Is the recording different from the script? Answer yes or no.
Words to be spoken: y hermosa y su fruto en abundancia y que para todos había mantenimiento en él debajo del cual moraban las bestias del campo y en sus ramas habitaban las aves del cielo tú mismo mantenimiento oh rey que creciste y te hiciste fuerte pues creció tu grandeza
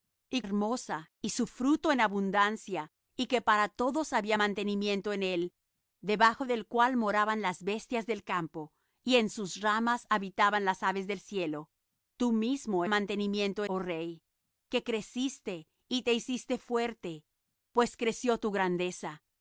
no